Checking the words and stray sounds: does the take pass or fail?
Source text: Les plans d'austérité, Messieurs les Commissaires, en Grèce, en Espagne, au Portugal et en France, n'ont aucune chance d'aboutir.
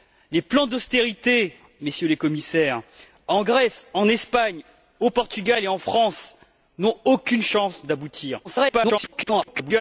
fail